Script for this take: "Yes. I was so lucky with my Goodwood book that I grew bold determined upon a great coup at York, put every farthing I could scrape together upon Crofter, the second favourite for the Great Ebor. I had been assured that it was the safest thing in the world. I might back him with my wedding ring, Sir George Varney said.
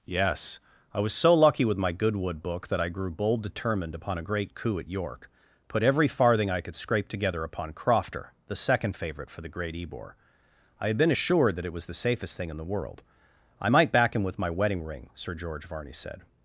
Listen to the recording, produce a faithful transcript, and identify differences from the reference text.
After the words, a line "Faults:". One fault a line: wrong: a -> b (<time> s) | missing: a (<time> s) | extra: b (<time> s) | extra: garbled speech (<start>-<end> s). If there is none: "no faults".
"Yes. I was so lucky with my Goodwood book that I grew bold determined upon a great coup at York, put every farthing I could scrape together upon Crofter, the second favourite for the Great Ebor. I had been assured that it was the safest thing in the world. I might back him with my wedding ring, Sir George Varney said.
Faults:
no faults